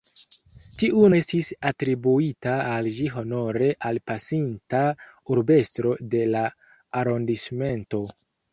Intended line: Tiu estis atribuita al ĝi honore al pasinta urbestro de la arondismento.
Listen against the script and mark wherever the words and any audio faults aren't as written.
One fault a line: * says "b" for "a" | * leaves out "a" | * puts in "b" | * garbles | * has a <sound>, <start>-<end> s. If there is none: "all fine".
all fine